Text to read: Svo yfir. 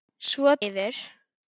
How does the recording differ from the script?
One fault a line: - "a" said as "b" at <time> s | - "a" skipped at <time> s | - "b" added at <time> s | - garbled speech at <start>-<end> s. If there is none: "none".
none